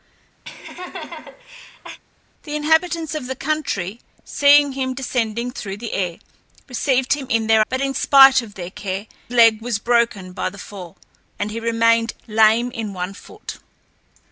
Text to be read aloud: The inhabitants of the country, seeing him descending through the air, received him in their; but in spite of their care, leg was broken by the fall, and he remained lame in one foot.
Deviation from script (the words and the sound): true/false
true